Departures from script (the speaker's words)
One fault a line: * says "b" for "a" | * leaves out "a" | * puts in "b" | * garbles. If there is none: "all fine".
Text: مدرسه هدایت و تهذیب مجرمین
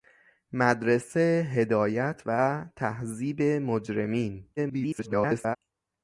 * garbles